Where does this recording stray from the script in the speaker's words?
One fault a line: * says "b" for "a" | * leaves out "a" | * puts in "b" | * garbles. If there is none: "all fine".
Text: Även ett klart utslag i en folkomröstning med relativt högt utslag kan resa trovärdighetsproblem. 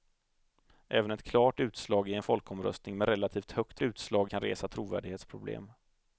all fine